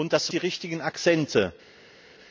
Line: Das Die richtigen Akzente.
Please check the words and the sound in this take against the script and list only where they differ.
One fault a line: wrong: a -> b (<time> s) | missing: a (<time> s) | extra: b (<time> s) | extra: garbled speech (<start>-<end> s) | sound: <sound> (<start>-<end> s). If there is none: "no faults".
no faults